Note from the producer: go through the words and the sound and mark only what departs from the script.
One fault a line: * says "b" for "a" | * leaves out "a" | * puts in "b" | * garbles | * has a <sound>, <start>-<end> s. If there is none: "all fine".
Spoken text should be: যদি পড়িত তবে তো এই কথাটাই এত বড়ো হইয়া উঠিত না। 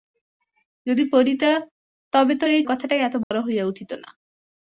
* has a dropout, 3.2-3.3 s